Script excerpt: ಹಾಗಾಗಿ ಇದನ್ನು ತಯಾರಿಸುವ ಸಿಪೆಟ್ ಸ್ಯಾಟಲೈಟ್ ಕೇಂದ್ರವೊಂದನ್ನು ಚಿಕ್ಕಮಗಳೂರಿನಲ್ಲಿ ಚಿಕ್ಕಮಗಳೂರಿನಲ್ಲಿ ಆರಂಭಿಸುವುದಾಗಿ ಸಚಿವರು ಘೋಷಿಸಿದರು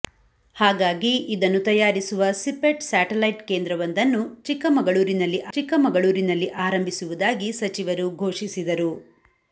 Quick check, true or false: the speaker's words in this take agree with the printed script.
true